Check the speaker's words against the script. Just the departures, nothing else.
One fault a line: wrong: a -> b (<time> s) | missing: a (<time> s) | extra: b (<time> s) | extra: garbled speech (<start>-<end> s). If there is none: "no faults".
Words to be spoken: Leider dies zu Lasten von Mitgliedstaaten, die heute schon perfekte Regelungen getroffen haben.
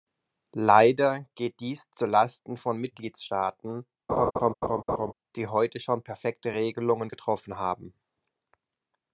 extra: geht (1.4 s)